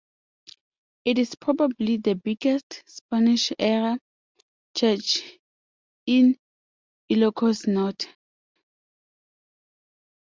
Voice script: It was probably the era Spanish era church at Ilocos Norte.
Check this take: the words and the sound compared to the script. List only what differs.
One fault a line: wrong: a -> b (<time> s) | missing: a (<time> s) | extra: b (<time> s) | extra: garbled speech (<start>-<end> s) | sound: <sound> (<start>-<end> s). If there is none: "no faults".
wrong: was -> is (1.2 s)
wrong: era -> biggest (2.1 s)
wrong: at -> in (6.1 s)